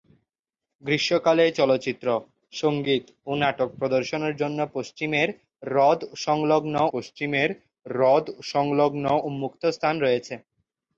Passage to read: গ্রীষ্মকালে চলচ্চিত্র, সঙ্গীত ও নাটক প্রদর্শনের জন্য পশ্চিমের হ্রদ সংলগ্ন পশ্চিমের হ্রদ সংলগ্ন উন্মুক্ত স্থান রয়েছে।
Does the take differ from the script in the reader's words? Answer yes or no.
no